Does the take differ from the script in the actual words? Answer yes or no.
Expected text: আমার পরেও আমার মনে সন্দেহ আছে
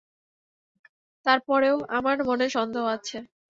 yes